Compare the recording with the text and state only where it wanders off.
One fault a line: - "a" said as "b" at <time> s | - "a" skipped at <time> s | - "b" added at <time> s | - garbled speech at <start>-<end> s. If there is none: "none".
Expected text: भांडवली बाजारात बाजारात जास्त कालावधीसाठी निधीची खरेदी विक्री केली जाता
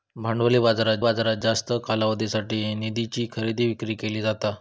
none